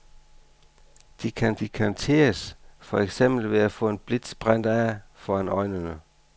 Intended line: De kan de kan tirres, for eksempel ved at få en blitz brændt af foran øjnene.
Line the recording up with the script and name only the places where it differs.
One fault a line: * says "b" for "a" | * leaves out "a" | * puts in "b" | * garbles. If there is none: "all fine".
all fine